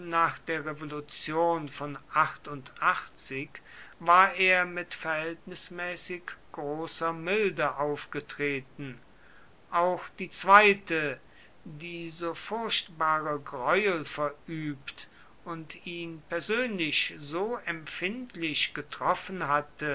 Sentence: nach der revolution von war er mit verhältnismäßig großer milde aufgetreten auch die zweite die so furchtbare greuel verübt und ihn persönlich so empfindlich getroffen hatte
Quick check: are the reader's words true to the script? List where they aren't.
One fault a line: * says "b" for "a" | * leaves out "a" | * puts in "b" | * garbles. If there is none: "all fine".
all fine